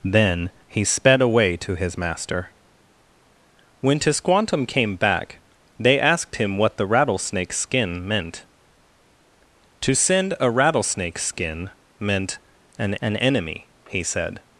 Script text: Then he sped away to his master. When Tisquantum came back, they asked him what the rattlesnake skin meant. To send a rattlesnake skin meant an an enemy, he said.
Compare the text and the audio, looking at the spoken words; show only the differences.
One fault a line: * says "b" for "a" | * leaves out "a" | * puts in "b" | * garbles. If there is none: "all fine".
all fine